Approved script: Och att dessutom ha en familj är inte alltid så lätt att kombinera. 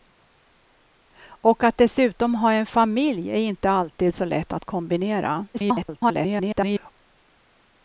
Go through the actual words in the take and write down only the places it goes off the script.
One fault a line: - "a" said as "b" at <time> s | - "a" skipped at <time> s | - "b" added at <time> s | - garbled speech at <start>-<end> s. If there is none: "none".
- garbled speech at 5.5-6.9 s